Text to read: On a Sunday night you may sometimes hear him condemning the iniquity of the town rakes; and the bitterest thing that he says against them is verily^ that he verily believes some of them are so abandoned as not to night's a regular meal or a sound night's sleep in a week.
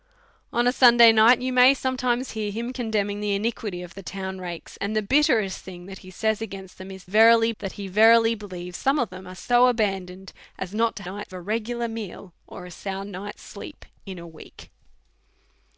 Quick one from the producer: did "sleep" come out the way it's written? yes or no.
yes